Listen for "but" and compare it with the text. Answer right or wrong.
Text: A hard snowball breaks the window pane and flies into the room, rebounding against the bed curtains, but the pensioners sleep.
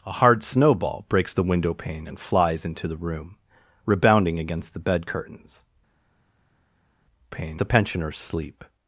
wrong